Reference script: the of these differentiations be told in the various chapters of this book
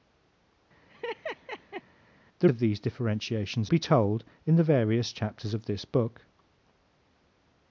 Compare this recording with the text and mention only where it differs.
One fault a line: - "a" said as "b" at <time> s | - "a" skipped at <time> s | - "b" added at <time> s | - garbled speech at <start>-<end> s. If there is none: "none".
none